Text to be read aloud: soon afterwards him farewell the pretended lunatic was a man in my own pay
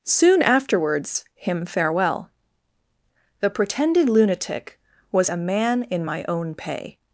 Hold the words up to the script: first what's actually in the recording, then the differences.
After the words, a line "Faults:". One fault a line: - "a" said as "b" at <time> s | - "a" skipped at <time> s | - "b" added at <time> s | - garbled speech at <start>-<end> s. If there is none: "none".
soon afterwards him farewell the pretended lunatic was a man in my own pay
Faults:
none